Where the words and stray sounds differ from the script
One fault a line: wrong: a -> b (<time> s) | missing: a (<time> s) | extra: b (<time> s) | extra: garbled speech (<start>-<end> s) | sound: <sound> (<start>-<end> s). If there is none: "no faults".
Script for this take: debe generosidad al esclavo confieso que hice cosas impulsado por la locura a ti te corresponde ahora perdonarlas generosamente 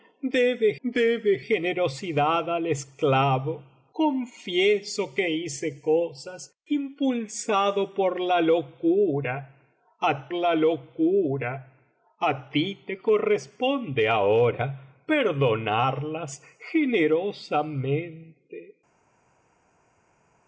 extra: debe (0.8 s)
extra: la locura a (10.3 s)